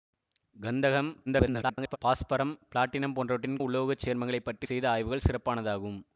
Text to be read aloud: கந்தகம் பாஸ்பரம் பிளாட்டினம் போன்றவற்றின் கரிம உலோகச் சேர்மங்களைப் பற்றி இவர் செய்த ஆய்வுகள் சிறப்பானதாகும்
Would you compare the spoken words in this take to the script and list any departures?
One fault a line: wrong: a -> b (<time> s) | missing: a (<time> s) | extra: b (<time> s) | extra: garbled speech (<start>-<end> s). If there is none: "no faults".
extra: garbled speech (1.3-2.0 s)
missing: கரிம (3.6 s)
missing: இவர் (4.7 s)